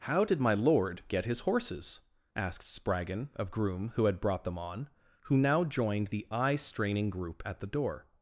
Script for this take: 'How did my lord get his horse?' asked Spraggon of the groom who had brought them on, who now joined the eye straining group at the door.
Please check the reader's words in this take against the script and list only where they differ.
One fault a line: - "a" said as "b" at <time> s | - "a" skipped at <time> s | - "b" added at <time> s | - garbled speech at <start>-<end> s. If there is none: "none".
- "horse" said as "horses" at 1.4 s
- "the" skipped at 3.5 s